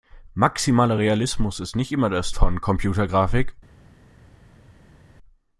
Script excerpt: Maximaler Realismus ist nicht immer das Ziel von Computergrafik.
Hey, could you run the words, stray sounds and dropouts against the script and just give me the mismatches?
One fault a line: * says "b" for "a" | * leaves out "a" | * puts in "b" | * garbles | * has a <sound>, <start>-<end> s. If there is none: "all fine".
* leaves out "Ziel"